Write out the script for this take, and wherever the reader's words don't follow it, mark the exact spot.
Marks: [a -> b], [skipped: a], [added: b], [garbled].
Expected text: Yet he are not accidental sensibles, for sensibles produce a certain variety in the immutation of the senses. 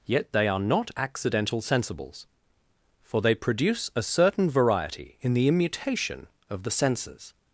Yet [he -> they] are not accidental sensibles, for [sensibles -> they] produce a certain variety in the immutation of the senses.